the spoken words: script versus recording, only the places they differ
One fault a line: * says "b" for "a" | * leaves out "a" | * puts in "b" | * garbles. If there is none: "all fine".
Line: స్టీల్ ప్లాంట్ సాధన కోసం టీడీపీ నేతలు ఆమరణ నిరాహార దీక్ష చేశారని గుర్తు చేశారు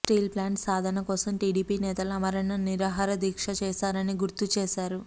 all fine